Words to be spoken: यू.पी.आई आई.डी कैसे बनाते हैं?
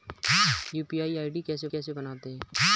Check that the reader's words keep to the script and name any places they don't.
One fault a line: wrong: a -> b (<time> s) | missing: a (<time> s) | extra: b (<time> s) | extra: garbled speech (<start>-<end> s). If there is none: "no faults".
extra: कैसे (1.7 s)